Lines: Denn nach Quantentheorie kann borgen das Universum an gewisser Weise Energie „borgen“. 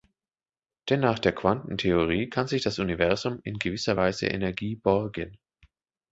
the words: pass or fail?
fail